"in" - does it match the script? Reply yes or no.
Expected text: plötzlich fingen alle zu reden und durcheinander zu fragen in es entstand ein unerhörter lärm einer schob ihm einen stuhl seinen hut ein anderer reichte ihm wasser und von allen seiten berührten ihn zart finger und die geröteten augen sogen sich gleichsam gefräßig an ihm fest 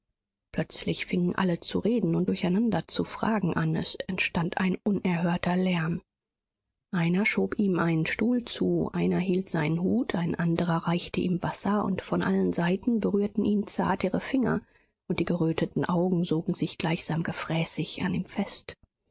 no